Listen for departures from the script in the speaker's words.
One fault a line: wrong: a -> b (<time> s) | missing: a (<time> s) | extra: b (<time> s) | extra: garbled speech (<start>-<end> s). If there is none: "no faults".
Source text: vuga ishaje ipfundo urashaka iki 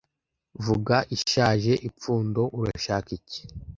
no faults